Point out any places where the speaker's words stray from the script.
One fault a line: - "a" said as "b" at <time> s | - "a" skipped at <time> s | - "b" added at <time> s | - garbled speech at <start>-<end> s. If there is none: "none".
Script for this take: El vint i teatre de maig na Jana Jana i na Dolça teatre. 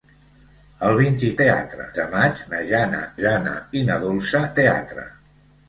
none